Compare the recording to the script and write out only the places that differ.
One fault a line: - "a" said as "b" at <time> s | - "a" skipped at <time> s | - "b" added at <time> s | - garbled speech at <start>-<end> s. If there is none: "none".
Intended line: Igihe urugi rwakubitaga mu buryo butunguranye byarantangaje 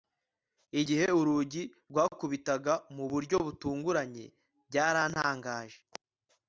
none